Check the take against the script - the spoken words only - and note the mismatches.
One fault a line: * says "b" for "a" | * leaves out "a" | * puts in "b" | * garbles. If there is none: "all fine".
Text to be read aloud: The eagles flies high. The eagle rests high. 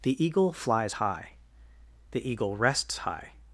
* says "eagle" for "eagles"